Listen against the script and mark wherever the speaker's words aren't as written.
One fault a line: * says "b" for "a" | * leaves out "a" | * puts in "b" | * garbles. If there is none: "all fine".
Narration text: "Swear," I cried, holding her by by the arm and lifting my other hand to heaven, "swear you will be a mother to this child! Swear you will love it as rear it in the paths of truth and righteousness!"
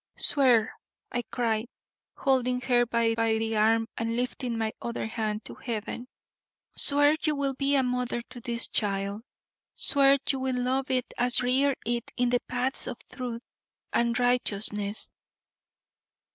all fine